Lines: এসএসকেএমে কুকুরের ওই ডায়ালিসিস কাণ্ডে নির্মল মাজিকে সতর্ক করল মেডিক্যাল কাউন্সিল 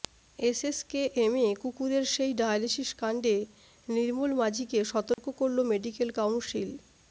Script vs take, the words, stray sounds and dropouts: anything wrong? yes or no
yes